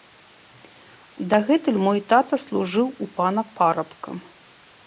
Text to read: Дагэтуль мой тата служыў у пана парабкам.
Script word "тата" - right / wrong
right